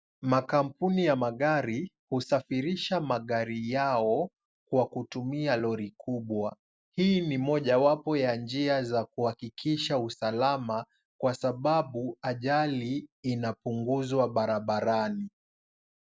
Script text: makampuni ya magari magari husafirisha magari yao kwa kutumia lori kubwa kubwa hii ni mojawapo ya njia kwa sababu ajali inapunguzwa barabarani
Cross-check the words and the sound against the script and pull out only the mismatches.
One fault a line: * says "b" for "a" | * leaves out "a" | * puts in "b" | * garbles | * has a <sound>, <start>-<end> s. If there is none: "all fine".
* leaves out "magari"
* leaves out "kubwa"
* puts in "za kuhakikisha usalama"